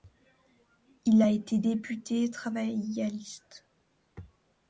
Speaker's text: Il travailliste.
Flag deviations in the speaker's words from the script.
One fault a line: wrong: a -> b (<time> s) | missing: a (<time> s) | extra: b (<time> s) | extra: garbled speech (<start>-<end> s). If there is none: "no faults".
extra: a été député (1.2 s)